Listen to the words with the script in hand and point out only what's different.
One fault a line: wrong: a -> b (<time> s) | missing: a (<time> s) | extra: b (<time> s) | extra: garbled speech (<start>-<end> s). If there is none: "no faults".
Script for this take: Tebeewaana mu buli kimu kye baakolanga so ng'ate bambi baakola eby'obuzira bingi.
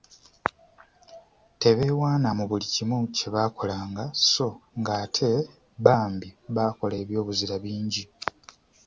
no faults